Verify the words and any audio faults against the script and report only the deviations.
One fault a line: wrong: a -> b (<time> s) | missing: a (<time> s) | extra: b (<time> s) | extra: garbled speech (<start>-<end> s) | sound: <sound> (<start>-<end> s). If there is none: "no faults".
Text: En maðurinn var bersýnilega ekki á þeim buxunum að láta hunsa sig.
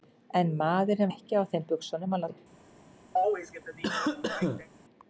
missing: var bersýnilega (1.1 s)
missing: láta hunsa (2.2 s)
sound: cough (3.2-4.7 s)